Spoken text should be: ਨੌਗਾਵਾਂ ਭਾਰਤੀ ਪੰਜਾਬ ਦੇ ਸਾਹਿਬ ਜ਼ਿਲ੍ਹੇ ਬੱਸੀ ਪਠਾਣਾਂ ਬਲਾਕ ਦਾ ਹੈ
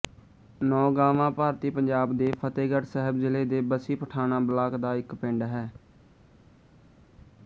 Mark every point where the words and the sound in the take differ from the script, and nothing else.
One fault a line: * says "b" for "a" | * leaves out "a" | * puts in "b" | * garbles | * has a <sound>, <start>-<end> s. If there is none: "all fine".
* puts in "ਫ਼ਤਹਿਗੜ੍ਹ"
* puts in "ਦੇ"
* puts in "ਇੱਕ ਪਿੰਡ"